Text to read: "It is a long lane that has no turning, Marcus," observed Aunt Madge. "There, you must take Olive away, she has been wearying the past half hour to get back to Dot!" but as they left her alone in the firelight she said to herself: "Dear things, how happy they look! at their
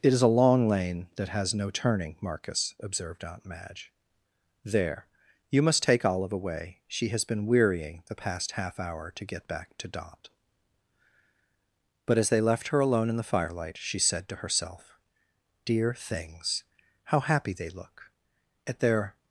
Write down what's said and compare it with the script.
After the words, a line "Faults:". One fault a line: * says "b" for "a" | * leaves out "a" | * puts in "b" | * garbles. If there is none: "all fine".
"It is a long lane that has no turning, Marcus," observed Aunt Madge. "There, you must take Olive away, she has been wearying the past half hour to get back to Dot!" but as they left her alone in the firelight she said to herself: "Dear things, how happy they look! at their
Faults:
all fine